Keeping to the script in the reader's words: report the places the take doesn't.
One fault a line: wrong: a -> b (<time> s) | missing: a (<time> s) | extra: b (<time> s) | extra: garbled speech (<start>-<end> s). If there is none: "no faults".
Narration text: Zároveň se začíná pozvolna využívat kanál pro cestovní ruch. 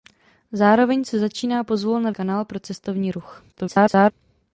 missing: využívat (2.1 s)
extra: garbled speech (3.5-4.1 s)